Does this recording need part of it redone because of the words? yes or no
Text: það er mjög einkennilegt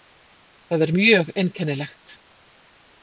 no